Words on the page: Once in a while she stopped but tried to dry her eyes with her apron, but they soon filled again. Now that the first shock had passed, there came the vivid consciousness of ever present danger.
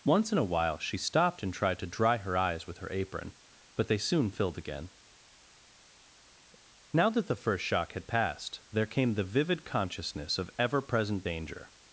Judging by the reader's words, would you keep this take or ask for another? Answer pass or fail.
fail